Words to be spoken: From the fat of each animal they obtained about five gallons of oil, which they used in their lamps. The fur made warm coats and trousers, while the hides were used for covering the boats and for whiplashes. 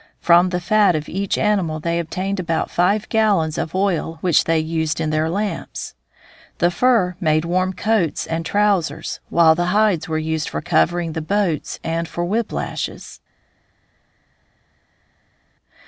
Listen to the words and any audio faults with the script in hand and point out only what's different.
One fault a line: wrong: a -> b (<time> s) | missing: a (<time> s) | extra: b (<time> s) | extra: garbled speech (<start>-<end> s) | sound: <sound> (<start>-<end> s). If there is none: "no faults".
no faults